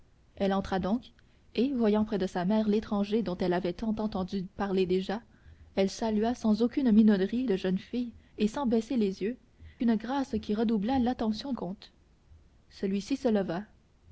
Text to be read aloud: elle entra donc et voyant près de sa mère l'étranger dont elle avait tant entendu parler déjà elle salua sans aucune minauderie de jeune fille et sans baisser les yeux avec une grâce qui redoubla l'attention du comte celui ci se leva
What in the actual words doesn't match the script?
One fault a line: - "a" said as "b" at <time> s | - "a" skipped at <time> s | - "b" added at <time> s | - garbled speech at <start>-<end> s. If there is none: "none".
- "avec" skipped at 9.4 s
- "du" skipped at 11.5 s